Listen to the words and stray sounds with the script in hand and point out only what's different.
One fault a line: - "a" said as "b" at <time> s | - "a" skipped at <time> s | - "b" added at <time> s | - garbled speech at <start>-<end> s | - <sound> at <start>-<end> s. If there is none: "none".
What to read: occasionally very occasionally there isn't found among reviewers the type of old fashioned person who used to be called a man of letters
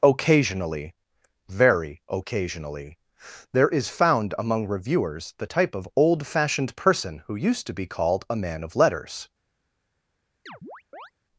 - "isn't" said as "is" at 3.7 s
- chirp at 10.5-11.1 s